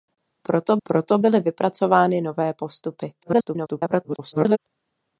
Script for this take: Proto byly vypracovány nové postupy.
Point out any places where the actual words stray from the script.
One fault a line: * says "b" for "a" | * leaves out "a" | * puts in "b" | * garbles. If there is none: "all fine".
* puts in "proto"
* garbles